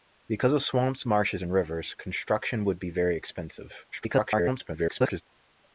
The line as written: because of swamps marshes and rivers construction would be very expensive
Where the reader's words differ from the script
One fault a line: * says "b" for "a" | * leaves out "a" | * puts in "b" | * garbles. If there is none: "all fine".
* garbles